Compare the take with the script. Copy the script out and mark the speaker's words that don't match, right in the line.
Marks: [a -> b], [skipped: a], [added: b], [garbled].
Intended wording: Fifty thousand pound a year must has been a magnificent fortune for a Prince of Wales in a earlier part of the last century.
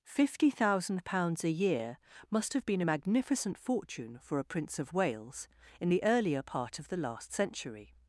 Fifty thousand [pound -> pounds] a year must [has -> have] been a magnificent fortune for a Prince of Wales in [a -> the] earlier part of the last century.